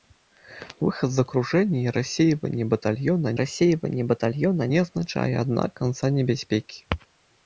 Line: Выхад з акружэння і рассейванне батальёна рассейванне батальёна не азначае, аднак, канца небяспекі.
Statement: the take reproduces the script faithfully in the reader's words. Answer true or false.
true